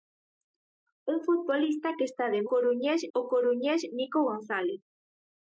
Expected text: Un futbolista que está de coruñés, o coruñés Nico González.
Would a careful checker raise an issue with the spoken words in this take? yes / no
no